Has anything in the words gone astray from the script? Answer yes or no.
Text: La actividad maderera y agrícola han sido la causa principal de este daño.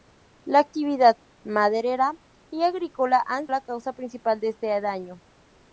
yes